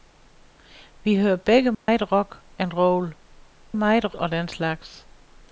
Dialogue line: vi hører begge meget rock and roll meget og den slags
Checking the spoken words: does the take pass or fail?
pass